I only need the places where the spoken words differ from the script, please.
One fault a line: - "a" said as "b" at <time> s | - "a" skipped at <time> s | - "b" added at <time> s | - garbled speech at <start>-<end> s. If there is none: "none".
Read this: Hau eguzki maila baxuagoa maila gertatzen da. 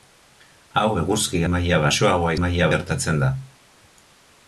none